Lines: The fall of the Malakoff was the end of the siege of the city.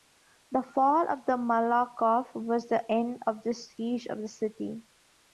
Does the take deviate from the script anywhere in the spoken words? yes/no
no